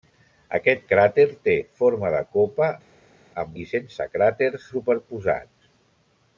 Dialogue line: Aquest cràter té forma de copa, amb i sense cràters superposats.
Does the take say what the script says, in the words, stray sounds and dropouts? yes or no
yes